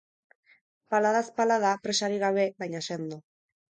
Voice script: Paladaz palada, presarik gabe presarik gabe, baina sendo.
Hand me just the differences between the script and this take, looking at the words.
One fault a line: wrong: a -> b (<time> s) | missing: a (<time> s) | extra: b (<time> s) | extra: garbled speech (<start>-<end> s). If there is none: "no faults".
missing: presarik gabe (2.5 s)